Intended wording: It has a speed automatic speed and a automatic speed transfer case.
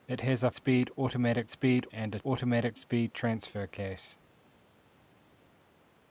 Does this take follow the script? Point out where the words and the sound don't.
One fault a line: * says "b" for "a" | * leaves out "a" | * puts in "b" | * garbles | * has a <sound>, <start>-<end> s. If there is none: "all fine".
all fine